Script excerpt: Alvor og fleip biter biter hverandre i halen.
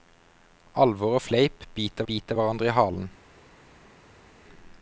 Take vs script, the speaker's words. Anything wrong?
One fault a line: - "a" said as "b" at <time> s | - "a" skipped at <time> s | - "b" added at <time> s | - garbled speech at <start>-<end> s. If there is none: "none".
none